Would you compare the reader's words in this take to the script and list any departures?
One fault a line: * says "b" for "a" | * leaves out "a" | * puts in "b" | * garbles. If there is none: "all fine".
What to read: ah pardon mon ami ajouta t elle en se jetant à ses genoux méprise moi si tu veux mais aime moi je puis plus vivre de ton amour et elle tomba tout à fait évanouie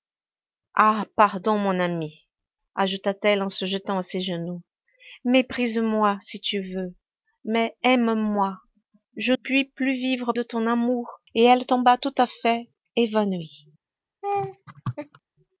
all fine